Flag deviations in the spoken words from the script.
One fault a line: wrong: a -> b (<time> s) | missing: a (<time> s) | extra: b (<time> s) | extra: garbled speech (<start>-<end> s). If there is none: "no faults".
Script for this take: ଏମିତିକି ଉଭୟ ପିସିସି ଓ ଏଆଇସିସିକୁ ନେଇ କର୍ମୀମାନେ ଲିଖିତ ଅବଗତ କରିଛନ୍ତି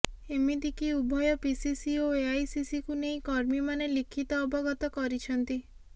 no faults